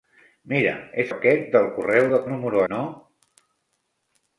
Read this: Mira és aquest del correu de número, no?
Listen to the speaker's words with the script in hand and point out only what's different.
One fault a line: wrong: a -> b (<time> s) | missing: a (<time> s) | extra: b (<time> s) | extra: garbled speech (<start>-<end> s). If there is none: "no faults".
no faults